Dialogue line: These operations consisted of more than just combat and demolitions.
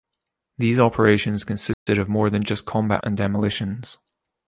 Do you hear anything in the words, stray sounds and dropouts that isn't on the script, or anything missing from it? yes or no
yes